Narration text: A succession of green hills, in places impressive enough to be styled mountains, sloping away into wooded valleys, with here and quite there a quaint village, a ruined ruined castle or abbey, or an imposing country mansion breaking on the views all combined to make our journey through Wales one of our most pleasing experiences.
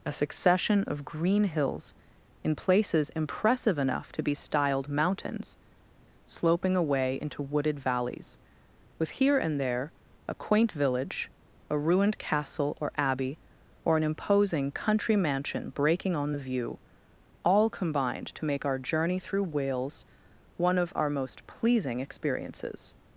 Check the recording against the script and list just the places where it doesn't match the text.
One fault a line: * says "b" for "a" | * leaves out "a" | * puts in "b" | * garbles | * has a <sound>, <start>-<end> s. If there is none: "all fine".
* leaves out "quite"
* leaves out "ruined"
* says "view" for "views"